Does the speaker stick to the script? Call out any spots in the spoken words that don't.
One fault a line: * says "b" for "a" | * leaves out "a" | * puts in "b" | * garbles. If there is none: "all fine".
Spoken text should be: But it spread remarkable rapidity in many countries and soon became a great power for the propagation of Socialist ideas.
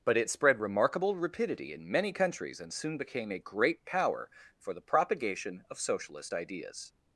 all fine